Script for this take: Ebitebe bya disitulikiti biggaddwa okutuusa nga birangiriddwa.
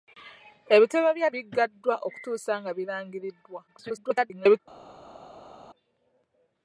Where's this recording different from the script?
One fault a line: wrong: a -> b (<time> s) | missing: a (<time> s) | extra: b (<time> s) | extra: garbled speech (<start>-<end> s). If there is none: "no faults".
missing: disitulikiti (1.3 s)
extra: garbled speech (3.7-4.6 s)